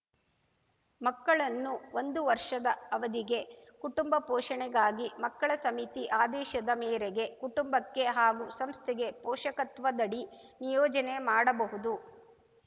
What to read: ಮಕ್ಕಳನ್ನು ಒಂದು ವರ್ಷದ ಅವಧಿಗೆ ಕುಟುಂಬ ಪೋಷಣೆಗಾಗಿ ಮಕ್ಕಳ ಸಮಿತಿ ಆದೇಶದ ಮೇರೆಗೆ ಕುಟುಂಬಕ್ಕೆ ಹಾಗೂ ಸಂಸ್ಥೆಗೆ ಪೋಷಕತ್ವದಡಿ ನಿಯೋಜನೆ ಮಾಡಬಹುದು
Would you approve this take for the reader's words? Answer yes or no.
yes